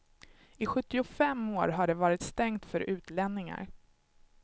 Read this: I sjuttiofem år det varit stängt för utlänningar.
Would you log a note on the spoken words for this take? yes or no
yes